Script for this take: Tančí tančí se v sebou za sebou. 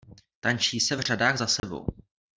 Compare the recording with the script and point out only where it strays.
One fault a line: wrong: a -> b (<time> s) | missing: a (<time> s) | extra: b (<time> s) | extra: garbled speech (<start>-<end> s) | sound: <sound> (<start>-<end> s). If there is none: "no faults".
missing: tančí (0.8 s)
wrong: sebou -> řadách (1.0 s)
sound: dropout (1.6-1.6 s)